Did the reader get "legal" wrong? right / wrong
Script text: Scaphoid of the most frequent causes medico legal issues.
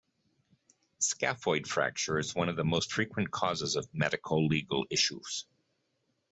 right